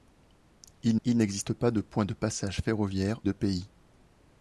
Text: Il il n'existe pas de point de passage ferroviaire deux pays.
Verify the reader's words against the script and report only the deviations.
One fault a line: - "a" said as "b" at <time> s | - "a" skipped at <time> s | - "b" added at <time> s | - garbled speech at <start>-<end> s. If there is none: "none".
none